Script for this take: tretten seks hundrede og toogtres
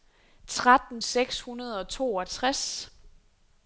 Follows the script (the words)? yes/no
yes